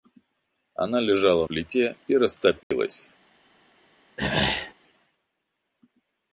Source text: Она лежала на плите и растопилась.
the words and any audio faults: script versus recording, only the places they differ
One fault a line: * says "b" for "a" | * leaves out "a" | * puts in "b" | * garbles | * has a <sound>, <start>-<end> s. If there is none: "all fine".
* leaves out "на"
* has a dropout, 2.6-2.7 s
* has a throat clearing, 4.2-4.7 s